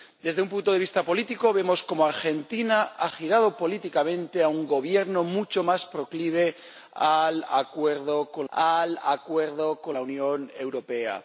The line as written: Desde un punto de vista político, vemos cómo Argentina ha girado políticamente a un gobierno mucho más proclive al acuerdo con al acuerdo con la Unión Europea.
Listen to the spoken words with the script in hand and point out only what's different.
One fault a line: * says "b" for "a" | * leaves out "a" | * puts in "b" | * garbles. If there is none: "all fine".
all fine